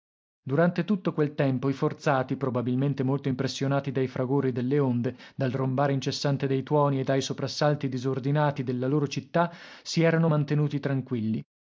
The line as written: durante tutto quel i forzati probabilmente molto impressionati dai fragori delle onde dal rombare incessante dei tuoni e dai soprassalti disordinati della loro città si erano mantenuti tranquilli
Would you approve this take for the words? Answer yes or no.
no